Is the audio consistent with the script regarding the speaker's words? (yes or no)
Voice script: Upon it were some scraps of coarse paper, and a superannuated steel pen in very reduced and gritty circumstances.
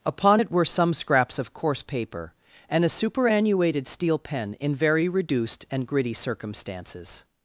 yes